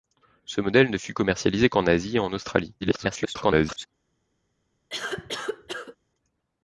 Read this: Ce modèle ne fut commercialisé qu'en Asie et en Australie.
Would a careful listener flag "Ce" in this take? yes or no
no